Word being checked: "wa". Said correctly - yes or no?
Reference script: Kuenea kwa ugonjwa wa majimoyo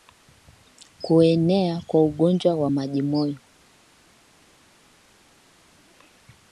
yes